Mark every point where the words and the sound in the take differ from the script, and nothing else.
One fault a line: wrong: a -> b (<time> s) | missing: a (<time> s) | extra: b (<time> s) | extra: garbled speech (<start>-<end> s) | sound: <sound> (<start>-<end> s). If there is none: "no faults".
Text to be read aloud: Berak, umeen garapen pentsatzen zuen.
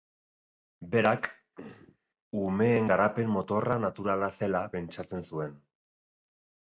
sound: throat clearing (1.5-2.0 s)
extra: motorra naturala zela (3.3 s)